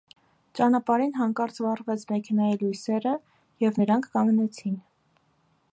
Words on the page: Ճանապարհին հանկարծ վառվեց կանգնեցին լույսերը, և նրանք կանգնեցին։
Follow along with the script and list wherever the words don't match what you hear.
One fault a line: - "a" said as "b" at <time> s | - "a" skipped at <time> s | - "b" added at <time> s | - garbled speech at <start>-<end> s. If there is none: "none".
- "կանգնեցին" said as "մեքենայի" at 2.1 s